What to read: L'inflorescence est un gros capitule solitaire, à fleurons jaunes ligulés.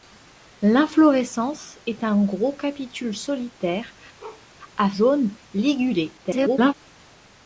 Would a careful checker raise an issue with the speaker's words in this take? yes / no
yes